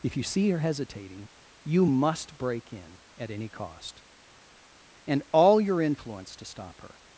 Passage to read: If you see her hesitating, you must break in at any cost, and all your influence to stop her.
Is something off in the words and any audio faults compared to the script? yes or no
no